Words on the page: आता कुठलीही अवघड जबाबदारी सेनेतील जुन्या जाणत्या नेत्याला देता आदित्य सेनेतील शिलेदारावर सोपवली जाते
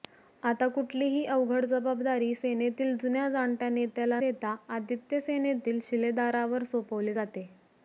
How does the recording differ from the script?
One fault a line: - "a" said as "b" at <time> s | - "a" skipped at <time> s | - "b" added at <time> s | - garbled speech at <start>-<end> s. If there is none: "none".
none